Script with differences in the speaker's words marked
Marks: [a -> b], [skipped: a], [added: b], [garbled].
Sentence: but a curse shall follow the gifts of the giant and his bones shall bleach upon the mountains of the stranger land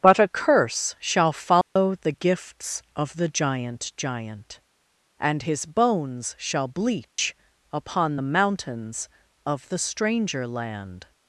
but a curse shall follow the gifts of the giant [added: giant] and his bones shall bleach upon the mountains of the stranger land